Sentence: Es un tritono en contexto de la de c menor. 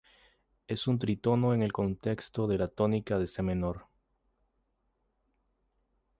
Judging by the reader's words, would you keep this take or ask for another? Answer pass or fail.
fail